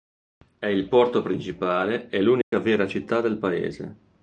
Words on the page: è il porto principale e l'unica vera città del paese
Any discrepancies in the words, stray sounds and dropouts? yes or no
yes